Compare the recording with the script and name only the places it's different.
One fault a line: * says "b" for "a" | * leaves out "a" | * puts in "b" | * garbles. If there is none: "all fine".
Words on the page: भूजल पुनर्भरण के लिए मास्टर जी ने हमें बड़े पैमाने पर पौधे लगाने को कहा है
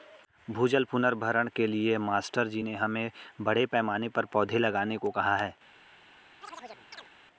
all fine